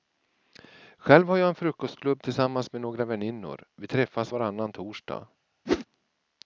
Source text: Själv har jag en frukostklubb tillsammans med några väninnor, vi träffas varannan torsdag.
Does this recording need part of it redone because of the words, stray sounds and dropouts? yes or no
yes